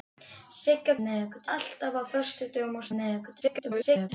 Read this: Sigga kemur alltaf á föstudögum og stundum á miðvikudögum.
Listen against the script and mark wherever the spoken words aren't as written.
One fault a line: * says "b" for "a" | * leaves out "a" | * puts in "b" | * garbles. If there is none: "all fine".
* says "miðvikudögum" for "kemur"
* leaves out "stundum"
* garbles